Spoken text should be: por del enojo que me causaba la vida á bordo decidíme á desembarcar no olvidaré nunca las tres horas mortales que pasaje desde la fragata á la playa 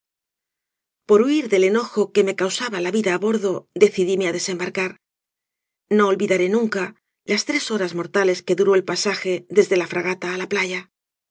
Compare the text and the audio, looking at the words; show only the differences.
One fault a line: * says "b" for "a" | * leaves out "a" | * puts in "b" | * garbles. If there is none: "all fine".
* puts in "huir"
* puts in "duró el"